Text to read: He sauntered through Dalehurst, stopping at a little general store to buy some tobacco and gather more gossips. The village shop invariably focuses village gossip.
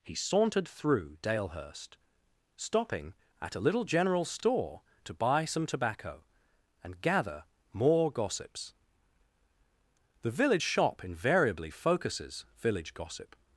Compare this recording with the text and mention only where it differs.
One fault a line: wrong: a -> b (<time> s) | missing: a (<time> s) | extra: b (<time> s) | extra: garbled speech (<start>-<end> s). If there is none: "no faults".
no faults